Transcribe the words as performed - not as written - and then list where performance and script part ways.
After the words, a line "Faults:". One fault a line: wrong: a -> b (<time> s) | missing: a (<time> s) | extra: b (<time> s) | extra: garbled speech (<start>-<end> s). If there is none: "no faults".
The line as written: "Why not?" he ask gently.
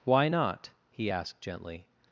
"Why not?" he asked gently.
Faults:
wrong: ask -> asked (1.1 s)